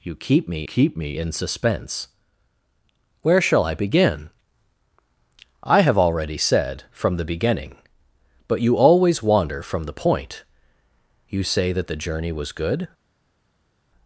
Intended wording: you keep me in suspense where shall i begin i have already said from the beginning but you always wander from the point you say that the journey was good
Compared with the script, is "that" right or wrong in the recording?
right